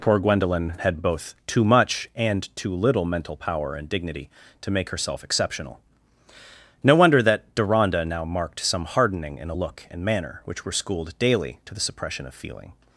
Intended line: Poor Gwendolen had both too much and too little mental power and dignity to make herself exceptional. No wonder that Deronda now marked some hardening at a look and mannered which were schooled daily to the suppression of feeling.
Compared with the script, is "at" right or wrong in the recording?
wrong